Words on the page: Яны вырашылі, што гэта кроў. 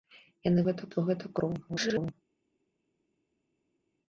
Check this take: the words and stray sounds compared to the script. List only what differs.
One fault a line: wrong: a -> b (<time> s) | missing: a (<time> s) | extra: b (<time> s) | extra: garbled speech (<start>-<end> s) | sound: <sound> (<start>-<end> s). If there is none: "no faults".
wrong: вырашылі -> гэта (0.7 s)
extra: garbled speech (1.7-2.1 s)